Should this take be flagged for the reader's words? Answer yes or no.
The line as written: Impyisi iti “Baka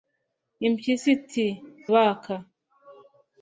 no